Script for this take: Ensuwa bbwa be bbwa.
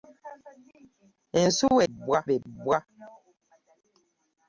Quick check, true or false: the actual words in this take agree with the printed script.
true